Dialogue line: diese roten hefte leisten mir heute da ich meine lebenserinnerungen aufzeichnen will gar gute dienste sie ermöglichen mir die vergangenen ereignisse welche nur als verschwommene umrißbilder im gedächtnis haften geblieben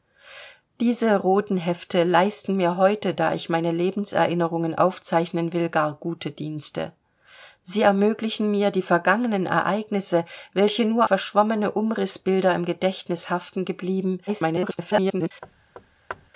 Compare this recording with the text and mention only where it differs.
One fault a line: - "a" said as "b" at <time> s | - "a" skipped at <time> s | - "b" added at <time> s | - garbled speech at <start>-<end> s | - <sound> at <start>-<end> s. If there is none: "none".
- "als" skipped at 11.1 s
- garbled speech at 14.3-15.3 s
- thud at 15.4-16.3 s